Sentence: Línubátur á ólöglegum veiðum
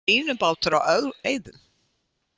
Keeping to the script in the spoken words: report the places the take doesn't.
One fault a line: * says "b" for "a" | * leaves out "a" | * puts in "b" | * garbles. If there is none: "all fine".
* leaves out "ólöglegum"